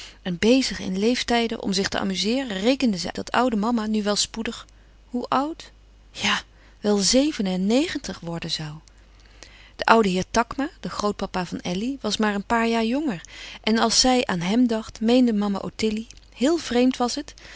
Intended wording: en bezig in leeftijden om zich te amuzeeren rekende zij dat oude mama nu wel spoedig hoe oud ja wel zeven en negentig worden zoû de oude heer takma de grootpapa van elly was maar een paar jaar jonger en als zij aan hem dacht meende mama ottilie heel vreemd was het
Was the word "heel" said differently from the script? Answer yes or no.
no